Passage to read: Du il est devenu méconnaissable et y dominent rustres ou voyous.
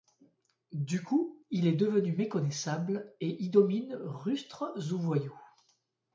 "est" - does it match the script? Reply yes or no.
yes